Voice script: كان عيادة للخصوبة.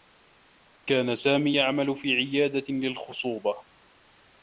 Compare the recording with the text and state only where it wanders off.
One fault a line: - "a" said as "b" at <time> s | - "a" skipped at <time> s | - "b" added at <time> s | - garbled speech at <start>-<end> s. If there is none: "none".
- "سامي يعمل في" added at 1.1 s